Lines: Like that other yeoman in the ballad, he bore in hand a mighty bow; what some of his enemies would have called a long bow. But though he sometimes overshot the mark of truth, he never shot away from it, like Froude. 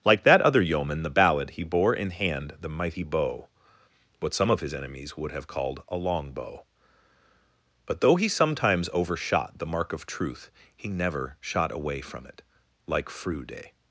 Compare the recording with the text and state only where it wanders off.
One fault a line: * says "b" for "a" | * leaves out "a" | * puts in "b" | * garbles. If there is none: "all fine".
* leaves out "in"
* says "the" for "a"